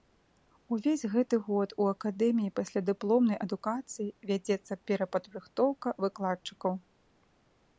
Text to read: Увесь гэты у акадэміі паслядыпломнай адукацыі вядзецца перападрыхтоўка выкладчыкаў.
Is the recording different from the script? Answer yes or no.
yes